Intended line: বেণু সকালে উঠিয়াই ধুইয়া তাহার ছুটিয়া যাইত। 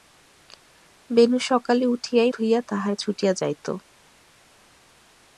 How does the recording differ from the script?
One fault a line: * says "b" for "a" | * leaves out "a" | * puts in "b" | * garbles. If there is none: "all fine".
all fine